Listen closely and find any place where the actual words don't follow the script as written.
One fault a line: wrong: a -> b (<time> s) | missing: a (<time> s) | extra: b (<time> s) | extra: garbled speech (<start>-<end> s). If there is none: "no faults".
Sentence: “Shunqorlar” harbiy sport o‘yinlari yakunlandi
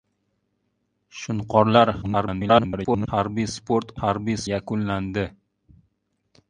extra: garbled speech (2.0-3.1 s)
wrong: o‘yinlari -> harbiy (4.0 s)